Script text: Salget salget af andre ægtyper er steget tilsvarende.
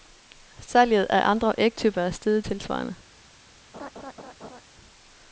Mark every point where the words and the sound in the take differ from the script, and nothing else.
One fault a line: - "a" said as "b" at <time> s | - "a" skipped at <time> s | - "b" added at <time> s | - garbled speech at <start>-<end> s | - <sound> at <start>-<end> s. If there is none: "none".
- "salget" skipped at 1.1 s
- laugh at 3.7-4.6 s